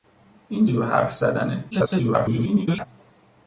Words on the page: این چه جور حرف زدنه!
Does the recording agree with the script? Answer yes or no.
no